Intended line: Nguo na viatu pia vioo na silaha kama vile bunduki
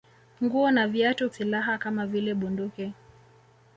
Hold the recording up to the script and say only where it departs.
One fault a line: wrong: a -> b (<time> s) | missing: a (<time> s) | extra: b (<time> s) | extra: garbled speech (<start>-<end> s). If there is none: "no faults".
missing: pia vioo na (1.3 s)